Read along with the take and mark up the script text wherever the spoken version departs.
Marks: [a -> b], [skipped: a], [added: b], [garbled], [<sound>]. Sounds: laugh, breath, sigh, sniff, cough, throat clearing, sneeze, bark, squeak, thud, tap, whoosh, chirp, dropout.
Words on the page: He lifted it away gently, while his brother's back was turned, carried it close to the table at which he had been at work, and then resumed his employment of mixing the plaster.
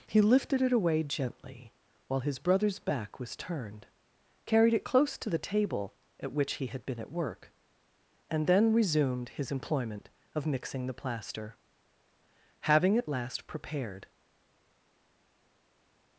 He lifted it away gently, while his brother's back was turned, carried it close to the table at which he had been at work, and then resumed his employment of mixing the plaster. [added: Having at last prepared]